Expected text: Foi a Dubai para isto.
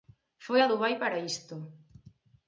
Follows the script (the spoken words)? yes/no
yes